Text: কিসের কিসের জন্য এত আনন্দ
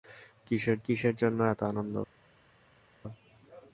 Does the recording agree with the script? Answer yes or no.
yes